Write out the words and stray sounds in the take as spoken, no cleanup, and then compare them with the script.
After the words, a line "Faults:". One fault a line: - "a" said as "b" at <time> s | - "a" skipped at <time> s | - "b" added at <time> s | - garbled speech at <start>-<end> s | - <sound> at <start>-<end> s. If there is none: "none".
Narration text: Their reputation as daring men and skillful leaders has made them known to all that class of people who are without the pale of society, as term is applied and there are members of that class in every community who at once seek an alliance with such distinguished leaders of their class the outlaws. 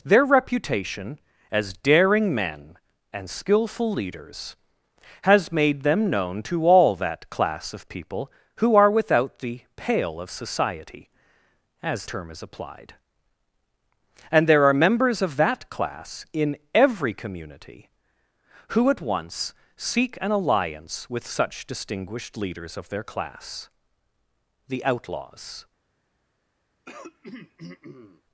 Their reputation as daring men and skillful leaders has made them known to all that class of people who are without the pale of society, as term is applied and there are members of that class in every community who at once seek an alliance with such distinguished leaders of their class the outlaws.
Faults:
- throat clearing at 26.9-28.2 s